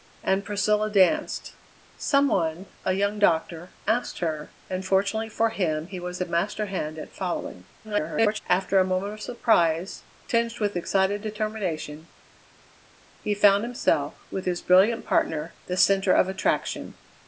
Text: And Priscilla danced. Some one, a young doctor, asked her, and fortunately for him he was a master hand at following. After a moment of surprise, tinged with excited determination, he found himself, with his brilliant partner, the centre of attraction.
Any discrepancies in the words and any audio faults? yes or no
yes